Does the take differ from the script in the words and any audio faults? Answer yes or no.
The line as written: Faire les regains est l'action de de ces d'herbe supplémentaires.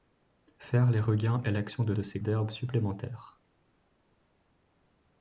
no